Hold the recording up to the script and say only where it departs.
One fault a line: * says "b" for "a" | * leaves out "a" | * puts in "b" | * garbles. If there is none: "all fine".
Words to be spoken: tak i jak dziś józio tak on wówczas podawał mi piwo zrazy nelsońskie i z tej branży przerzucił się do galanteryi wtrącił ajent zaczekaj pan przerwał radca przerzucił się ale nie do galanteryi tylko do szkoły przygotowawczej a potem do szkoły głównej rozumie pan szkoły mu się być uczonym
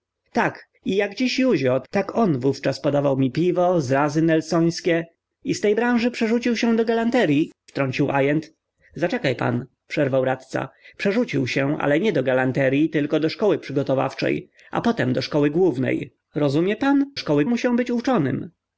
all fine